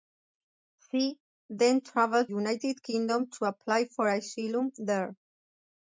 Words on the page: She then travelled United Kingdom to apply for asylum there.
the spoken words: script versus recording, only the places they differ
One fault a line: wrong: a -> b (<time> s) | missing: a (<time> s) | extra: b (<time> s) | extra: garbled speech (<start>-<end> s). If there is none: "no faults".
no faults